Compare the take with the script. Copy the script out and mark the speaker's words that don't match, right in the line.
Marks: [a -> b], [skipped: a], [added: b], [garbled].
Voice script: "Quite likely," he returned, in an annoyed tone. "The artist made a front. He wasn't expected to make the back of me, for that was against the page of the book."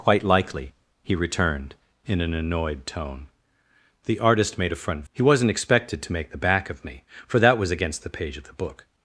"Quite likely," he returned, in an annoyed tone. "The artist made a front. He wasn't expected to make the back of me, for that was against the page of the book."